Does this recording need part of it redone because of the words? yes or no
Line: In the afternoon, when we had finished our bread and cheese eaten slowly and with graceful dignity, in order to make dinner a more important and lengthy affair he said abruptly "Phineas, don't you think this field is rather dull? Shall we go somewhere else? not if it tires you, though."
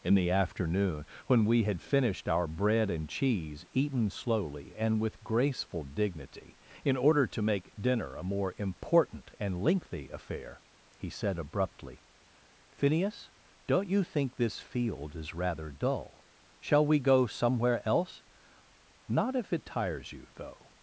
no